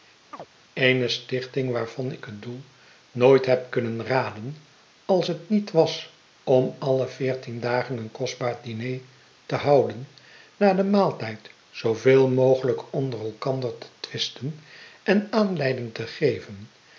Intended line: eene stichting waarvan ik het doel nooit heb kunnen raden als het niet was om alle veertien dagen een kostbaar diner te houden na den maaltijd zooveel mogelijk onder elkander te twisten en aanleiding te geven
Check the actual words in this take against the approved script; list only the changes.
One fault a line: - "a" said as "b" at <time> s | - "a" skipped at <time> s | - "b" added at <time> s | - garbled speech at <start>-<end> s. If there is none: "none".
none